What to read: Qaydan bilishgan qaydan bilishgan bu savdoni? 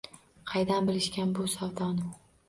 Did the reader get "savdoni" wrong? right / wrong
right